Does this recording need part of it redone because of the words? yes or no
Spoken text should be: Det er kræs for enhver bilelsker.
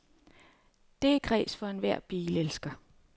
no